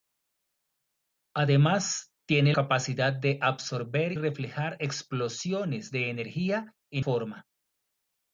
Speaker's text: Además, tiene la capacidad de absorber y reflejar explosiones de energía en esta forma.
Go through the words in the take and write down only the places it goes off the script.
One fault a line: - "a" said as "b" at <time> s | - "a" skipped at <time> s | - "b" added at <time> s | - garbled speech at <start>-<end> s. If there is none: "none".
- "la" skipped at 2.5 s
- "y" skipped at 4.1 s
- "esta" skipped at 7.0 s